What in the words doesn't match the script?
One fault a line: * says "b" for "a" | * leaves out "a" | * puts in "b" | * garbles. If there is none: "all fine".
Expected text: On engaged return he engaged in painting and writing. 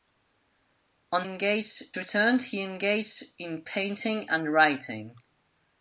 all fine